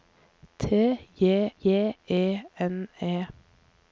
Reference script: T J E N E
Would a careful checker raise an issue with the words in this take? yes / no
yes